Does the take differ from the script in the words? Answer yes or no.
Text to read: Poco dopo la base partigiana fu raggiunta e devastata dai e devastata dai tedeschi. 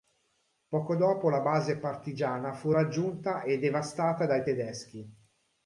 yes